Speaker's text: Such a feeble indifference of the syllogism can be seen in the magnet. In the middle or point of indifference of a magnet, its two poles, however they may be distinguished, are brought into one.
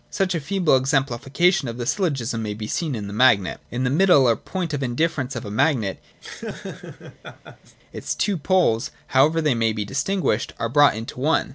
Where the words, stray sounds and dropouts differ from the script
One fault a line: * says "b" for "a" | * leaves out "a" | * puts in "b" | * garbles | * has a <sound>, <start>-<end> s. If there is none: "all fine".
* says "exemplification" for "indifference"
* says "may" for "can"
* has a laugh, 6.2-7.8 s